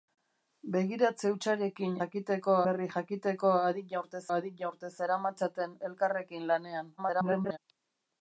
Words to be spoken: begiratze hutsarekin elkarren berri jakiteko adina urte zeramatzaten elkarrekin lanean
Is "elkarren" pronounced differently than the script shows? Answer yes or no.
yes